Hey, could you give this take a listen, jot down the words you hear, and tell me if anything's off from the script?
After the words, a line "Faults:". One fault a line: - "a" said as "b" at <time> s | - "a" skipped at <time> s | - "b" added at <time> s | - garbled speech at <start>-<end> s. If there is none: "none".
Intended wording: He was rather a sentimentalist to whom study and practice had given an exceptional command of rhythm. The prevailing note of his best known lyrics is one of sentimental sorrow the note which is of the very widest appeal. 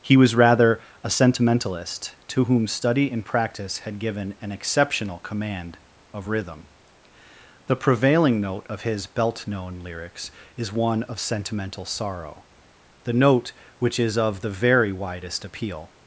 He was rather a sentimentalist to whom study and practice had given an exceptional command of rhythm. The prevailing note of his belt known lyrics is one of sentimental sorrow the note which is of the very widest appeal.
Faults:
- "best" said as "belt" at 9.1 s